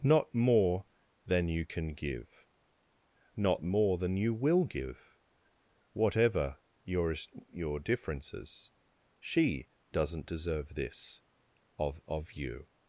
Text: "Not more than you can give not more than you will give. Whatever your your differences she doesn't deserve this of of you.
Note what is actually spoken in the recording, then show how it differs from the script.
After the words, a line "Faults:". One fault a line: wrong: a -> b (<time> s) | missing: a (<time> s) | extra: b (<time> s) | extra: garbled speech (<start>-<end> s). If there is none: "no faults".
"Not more than you can give not more than you will give. Whatever your your differences she doesn't deserve this of of you.
Faults:
no faults